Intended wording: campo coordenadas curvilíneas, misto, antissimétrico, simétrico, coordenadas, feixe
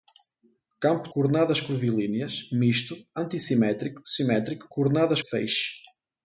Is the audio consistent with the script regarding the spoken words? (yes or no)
yes